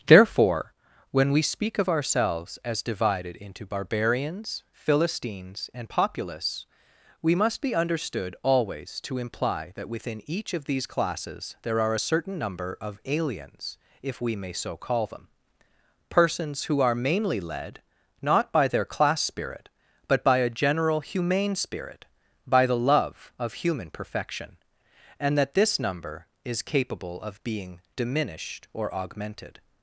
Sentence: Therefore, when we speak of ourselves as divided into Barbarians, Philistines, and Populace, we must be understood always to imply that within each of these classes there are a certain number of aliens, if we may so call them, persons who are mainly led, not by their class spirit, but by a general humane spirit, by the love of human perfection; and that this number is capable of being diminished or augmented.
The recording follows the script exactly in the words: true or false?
true